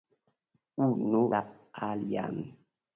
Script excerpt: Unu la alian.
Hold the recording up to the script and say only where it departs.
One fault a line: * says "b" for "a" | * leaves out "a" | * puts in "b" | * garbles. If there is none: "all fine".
all fine